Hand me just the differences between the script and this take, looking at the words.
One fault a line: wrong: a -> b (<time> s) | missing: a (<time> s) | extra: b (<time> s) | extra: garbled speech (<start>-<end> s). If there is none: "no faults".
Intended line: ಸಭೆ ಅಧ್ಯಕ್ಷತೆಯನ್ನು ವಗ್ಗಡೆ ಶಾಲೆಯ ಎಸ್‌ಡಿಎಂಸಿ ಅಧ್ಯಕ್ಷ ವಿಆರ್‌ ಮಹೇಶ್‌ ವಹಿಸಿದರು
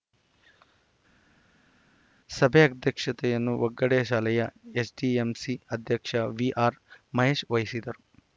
no faults